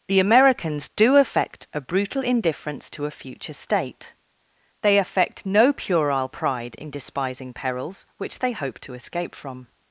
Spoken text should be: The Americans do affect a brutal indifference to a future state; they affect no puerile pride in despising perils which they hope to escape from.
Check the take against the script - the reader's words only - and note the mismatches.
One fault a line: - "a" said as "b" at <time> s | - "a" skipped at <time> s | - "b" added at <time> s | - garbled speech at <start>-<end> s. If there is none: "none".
none